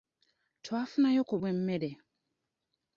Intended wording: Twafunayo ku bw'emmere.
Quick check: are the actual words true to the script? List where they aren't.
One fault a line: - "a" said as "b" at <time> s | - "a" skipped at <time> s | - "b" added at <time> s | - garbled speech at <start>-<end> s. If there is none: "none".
none